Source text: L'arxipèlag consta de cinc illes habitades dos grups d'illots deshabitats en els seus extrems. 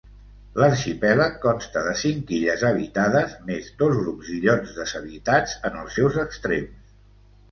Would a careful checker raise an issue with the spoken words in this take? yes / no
yes